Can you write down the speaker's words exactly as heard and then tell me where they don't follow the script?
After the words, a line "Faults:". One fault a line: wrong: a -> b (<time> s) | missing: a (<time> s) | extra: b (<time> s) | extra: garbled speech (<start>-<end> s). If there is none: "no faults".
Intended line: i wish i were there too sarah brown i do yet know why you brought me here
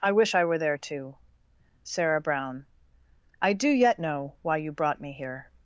i wish i were there too sarah brown i do yet know why you brought me here
Faults:
no faults